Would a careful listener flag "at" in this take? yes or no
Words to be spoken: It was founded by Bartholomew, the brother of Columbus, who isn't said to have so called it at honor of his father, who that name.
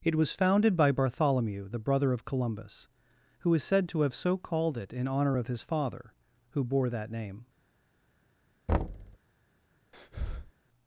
yes